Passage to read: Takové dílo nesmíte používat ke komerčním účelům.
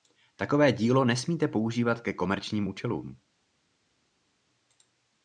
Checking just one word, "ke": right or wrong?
right